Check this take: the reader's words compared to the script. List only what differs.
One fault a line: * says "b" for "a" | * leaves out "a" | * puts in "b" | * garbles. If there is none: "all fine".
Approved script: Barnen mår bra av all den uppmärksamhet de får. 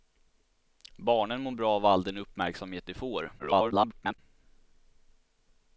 * garbles